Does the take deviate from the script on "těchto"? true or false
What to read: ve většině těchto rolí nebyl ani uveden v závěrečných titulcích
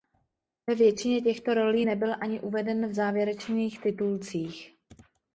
false